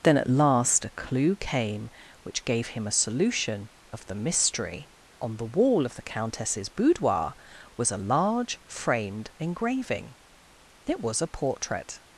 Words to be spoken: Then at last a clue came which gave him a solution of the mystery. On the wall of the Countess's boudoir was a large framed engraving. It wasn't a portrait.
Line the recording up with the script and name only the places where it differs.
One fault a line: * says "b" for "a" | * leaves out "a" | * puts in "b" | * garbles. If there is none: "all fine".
* says "was" for "wasn't"